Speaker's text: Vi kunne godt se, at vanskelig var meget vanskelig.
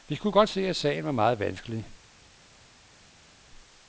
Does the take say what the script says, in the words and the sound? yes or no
no